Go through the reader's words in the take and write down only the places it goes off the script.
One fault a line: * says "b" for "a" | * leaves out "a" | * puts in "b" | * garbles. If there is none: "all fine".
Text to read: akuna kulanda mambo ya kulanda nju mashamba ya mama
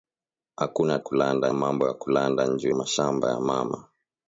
all fine